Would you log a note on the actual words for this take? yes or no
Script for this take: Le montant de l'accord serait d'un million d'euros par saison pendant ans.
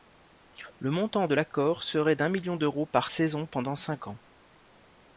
yes